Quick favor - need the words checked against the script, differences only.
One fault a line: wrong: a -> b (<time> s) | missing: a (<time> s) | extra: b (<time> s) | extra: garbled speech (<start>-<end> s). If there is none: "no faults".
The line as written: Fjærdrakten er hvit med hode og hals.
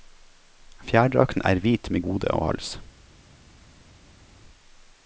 no faults